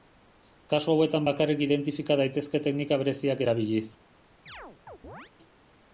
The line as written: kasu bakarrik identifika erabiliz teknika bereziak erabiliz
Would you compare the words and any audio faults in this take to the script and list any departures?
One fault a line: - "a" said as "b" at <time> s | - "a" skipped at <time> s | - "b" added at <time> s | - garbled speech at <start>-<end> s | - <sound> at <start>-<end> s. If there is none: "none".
- "hauetan" added at 0.9 s
- "erabiliz" said as "daitezke" at 2.2 s
- chirp at 4.5-5.3 s